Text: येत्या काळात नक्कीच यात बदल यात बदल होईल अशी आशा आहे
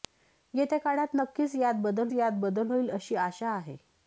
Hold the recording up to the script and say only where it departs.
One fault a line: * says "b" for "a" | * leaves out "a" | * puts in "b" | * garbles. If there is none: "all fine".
all fine